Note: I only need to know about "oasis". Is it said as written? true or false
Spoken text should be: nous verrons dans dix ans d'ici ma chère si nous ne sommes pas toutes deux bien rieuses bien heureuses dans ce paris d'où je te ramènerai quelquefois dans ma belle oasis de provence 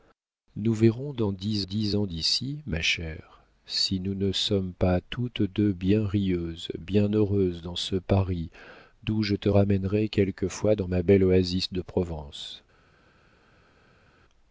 true